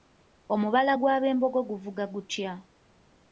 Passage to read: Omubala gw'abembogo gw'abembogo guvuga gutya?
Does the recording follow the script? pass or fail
fail